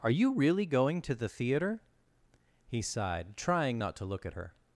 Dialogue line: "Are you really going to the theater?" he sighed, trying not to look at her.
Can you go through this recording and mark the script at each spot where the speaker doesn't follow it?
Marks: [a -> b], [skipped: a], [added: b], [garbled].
"Are you really going to the theater?" he sighed, trying not to look at her.